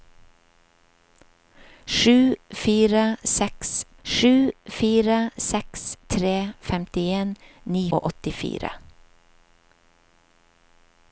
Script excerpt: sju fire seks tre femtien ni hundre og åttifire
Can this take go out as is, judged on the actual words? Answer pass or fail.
fail